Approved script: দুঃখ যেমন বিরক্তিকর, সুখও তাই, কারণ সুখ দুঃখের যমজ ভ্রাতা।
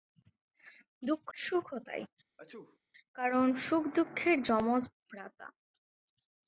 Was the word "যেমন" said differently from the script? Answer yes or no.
yes